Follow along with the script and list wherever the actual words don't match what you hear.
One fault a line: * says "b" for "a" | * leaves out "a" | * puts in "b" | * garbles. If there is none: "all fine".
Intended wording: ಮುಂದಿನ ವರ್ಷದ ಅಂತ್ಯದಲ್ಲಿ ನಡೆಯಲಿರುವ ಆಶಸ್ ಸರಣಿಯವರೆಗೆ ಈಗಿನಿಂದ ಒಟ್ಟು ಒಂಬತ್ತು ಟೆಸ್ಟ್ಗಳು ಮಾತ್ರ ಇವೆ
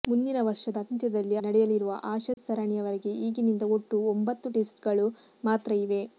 all fine